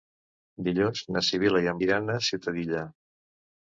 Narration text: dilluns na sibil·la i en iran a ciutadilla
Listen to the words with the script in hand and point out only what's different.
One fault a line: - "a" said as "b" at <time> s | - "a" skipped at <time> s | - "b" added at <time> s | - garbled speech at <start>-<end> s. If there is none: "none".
none